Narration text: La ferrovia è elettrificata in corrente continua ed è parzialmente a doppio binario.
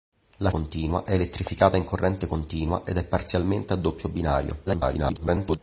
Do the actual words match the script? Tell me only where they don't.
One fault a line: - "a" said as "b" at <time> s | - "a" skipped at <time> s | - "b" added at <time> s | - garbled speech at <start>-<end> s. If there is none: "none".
- "ferrovia" said as "continua" at 0.5 s
- garbled speech at 4.7-5.6 s